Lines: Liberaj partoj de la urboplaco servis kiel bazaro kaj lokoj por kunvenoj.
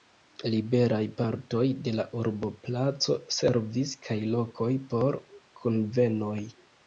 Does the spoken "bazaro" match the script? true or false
false